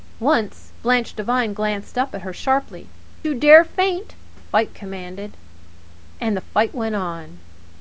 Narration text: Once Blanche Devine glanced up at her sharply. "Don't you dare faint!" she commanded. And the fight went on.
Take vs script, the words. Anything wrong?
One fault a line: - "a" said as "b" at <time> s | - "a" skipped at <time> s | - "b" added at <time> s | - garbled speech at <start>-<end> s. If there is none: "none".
- "Don't" skipped at 2.9 s
- "she" said as "fight" at 4.4 s